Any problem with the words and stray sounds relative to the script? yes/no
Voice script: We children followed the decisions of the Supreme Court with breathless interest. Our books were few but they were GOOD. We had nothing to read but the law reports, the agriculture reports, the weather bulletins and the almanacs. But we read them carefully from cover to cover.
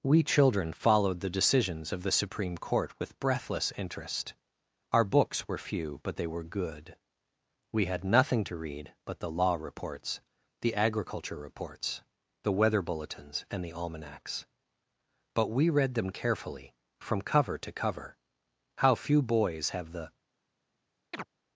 yes